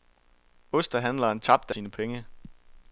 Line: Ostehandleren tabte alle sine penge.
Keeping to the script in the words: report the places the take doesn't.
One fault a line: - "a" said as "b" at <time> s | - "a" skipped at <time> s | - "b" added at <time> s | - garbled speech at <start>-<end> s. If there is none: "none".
- "alle" skipped at 1.8 s